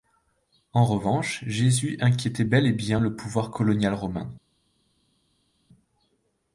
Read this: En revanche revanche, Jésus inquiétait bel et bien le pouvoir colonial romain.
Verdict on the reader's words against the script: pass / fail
fail